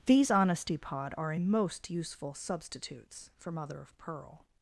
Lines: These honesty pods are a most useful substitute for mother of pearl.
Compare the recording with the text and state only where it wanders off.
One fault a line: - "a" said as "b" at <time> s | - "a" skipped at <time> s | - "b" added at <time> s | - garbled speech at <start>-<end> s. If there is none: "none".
- "pods" said as "pod" at 0.8 s
- "substitute" said as "substitutes" at 2.4 s